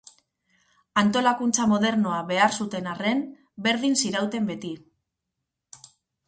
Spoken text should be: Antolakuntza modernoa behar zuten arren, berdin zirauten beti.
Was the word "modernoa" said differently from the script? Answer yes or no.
no